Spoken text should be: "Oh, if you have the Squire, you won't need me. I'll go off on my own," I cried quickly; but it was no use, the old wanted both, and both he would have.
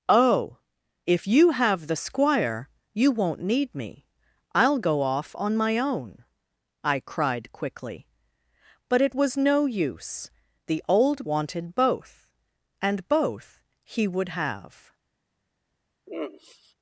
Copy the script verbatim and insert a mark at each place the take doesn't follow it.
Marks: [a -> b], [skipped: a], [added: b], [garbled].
"Oh, if you have the Squire, you won't need me. I'll go off on my own," I cried quickly; but it was no use, the old wanted both, and both he would have.